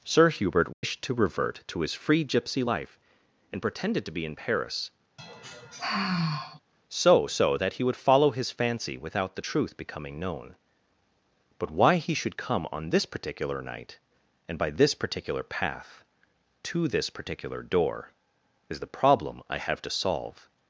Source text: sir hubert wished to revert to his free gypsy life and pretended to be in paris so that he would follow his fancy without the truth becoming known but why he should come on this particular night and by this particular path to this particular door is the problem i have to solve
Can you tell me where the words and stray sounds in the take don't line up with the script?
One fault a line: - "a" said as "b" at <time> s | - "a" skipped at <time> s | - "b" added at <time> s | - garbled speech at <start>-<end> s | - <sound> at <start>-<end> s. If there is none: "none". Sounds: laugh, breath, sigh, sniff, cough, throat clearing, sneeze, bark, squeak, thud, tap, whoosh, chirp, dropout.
- dropout at 0.7-0.8 s
- sigh at 5.2-6.6 s
- "so" added at 7.3 s